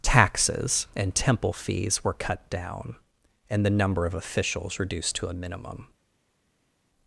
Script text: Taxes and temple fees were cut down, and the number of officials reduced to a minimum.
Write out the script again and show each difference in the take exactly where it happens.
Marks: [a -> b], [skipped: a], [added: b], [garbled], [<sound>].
Taxes and temple fees were cut down, and the number of officials reduced to a minimum.